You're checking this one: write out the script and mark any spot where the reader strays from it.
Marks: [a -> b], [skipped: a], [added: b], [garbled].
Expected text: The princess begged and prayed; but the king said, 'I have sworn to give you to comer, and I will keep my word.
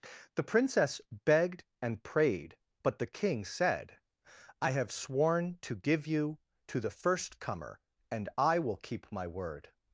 The princess begged and prayed; but the king said, 'I have sworn to give you to [added: the first] comer, and I will keep my word.